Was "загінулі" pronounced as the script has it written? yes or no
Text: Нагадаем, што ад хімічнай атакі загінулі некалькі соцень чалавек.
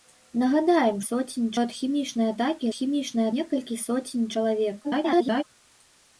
no